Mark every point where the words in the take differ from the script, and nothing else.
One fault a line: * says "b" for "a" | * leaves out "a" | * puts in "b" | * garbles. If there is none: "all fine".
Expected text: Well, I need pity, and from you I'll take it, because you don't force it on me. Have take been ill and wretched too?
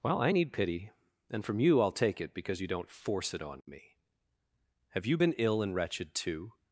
* says "you" for "take"